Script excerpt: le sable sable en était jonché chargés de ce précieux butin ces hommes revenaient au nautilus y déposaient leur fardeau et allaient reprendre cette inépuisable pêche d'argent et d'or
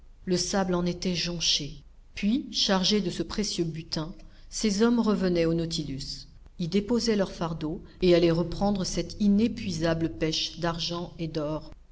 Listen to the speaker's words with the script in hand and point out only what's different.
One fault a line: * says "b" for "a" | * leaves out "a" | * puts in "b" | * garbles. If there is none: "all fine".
* leaves out "sable"
* puts in "puis"